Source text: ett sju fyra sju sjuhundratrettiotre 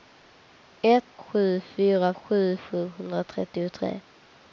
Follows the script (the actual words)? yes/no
yes